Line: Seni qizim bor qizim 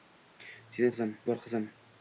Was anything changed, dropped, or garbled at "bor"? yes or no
no